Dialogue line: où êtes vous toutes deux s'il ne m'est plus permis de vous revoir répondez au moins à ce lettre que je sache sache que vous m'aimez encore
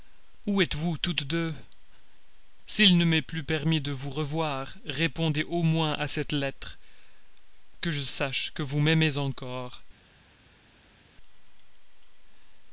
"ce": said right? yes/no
no